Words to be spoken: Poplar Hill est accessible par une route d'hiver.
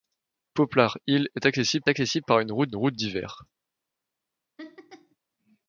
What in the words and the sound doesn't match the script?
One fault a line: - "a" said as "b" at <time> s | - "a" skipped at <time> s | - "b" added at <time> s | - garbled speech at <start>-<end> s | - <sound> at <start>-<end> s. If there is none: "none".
- "accessible" added at 1.9 s
- "route" added at 2.8 s
- laugh at 4.6-5.2 s